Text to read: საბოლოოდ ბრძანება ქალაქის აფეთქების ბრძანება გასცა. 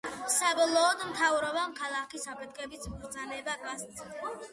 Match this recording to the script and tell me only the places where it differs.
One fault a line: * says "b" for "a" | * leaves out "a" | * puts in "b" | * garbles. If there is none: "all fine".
* says "მთავრობამ" for "ბრძანება"